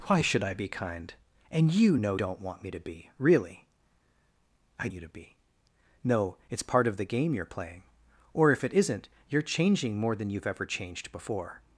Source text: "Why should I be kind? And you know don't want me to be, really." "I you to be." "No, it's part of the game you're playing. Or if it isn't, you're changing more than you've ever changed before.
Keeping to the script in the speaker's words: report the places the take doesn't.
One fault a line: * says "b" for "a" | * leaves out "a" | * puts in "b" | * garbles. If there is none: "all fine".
all fine